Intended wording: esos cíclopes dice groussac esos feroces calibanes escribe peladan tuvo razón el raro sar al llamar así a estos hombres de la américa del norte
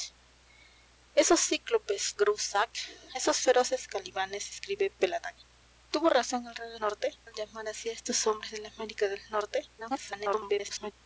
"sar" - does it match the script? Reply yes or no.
no